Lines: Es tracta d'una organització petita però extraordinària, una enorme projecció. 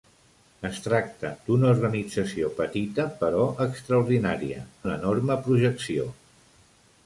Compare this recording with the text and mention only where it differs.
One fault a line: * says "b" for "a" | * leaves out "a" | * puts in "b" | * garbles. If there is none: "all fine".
all fine